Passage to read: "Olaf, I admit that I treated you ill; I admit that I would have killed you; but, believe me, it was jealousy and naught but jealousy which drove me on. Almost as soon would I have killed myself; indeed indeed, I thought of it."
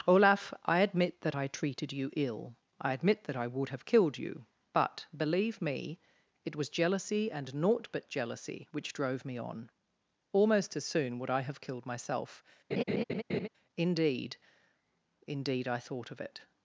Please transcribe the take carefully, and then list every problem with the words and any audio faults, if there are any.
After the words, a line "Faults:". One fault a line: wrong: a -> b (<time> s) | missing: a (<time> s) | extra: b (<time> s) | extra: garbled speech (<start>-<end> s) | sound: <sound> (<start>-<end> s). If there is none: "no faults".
"Olaf, I admit that I treated you ill; I admit that I would have killed you; but, believe me, it was jealousy and naught but jealousy which drove me on. Almost as soon would I have killed myself; indeed indeed, I thought of it."
Faults:
sound: laugh (12.7-13.5 s)